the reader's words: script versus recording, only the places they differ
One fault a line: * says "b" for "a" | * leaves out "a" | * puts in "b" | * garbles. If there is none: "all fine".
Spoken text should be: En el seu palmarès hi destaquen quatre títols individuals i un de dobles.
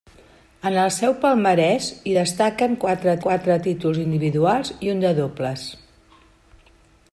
* puts in "quatre"